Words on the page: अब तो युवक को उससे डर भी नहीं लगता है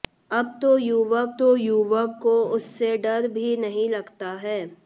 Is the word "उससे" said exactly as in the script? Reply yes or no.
yes